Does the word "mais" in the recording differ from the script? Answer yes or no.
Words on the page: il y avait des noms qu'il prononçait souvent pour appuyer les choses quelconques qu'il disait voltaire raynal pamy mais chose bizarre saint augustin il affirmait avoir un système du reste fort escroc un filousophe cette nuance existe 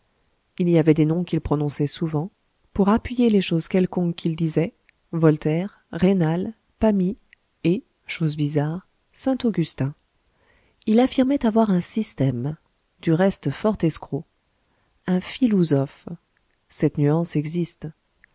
yes